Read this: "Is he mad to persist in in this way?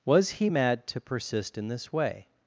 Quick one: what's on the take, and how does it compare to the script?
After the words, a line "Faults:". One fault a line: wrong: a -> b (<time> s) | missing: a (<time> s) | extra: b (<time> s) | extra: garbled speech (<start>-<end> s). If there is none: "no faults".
"Was he mad to persist in this way?
Faults:
wrong: Is -> Was (0.0 s)
missing: in (1.7 s)